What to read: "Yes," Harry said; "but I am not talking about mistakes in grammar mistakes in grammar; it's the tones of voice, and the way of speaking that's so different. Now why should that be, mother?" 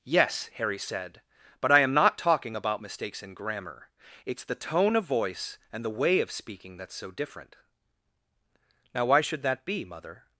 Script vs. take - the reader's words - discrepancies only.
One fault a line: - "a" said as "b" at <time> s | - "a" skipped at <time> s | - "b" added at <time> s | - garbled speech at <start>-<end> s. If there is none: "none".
- "mistakes in grammar" skipped at 3.9 s
- "tones" said as "tone" at 4.5 s